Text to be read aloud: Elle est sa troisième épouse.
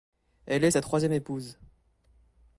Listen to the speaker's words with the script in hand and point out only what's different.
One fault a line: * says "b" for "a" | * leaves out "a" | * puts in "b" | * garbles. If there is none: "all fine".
all fine